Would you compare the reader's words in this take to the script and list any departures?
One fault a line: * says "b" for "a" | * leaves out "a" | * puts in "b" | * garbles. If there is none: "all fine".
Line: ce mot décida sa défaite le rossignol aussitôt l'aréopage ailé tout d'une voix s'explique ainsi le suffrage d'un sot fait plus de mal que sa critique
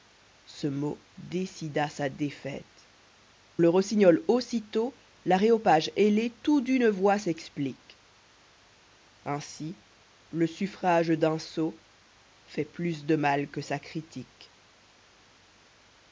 all fine